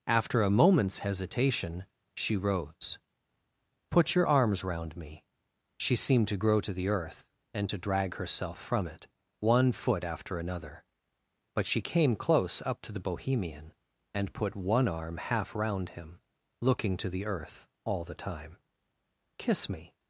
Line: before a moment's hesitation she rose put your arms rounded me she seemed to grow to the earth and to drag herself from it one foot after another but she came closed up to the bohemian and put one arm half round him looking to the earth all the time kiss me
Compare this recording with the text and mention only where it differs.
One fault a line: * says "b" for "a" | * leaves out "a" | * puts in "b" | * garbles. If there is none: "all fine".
* says "after" for "before"
* says "round" for "rounded"
* says "close" for "closed"